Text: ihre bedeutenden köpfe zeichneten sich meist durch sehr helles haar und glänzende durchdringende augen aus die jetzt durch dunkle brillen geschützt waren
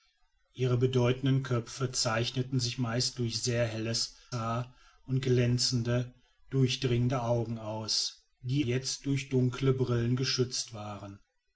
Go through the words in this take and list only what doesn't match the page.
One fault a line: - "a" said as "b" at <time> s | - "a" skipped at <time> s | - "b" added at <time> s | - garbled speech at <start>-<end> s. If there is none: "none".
none